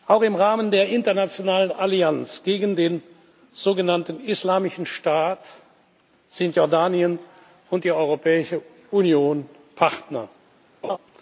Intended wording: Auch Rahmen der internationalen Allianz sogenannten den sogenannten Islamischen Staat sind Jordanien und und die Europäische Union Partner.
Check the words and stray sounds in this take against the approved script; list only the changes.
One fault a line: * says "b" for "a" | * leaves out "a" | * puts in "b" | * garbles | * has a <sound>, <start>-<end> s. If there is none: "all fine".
* puts in "im"
* says "gegen" for "sogenannten"
* leaves out "und"
* has a laugh, 10.8-11.0 s